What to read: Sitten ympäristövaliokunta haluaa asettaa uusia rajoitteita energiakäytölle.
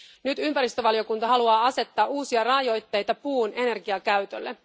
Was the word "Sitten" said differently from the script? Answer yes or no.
yes